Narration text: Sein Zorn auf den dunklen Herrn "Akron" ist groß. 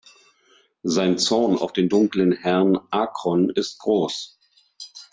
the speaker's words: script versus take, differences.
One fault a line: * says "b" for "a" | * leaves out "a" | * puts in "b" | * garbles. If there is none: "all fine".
all fine